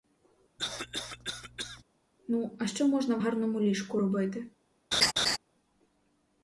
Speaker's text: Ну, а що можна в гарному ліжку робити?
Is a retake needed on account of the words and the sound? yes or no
yes